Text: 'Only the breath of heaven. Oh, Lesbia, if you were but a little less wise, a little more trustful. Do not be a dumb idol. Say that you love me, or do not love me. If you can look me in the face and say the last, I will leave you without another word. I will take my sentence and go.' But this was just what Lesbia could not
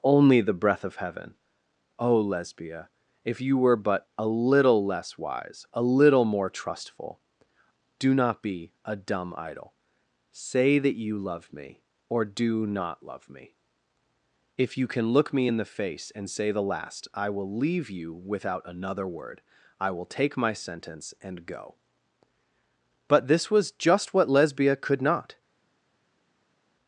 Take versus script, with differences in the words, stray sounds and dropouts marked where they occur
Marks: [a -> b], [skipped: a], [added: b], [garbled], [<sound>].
'Only the breath of heaven. Oh, Lesbia, if you were but a little less wise, a little more trustful. Do not be a dumb idol. Say that you love me, or do not love me. If you can look me in the face and say the last, I will leave you without another word. I will take my sentence and go.' But this was just what Lesbia could not